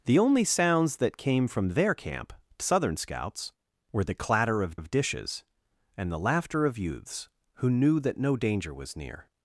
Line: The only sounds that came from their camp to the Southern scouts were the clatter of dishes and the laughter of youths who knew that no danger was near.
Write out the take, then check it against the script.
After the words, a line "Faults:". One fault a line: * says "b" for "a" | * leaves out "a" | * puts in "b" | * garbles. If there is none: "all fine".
The only sounds that came from their camp to Southern scouts were the clatter of of dishes and the laughter of youths who knew that no danger was near.
Faults:
* leaves out "the"
* puts in "of"